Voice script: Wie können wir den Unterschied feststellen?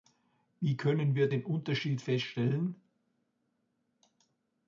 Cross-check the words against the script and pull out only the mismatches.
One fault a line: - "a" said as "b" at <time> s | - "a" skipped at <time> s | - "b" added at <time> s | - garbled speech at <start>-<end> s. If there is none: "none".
none